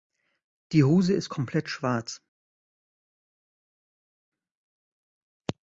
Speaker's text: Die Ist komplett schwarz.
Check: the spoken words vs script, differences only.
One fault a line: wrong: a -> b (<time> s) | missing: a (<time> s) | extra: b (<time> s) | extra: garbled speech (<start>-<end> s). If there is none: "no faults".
extra: Hose (0.8 s)